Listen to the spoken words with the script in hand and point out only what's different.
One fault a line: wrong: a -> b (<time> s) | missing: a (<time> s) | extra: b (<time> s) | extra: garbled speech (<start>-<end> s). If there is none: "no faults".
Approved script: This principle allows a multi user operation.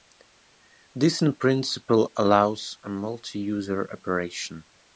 extra: in (1.2 s)